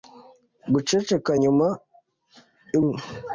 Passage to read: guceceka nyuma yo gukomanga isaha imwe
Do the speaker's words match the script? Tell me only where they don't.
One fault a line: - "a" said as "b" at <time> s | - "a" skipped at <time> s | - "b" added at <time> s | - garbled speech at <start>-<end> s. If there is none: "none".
- "gukomanga isaha" skipped at 2.8 s